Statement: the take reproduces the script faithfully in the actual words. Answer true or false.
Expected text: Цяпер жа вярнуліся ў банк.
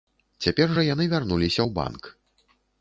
false